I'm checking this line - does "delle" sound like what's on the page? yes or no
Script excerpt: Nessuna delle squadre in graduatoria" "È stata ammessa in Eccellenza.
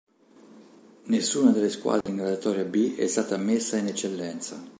yes